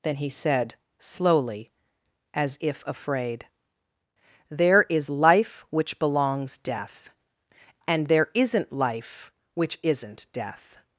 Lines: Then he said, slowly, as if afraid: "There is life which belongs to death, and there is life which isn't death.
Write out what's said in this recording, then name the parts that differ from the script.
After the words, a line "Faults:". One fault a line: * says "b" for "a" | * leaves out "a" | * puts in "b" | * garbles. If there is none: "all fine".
Then he said, slowly, as if afraid: "There is life which belongs death, and there isn't life which isn't death.
Faults:
* leaves out "to"
* says "isn't" for "is"